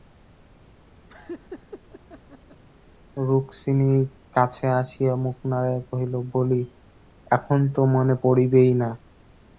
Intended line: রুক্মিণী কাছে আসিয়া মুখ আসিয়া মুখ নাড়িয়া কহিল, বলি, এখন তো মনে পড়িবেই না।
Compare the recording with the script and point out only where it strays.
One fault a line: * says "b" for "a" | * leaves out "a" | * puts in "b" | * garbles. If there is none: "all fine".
* leaves out "আসিয়া মুখ"